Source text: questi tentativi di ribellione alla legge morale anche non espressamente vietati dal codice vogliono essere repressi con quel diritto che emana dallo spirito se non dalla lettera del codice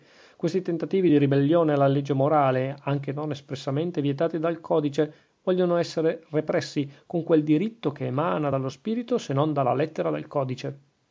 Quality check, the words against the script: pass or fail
pass